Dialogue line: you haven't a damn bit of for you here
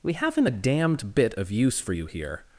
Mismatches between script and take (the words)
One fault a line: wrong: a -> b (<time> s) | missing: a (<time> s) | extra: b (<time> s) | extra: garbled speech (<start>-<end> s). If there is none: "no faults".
wrong: you -> we (0.0 s)
wrong: damn -> damned (0.5 s)
extra: use (1.5 s)